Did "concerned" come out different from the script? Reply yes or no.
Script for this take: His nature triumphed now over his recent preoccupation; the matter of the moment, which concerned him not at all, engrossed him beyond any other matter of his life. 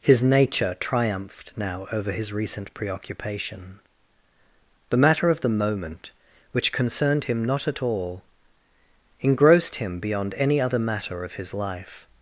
no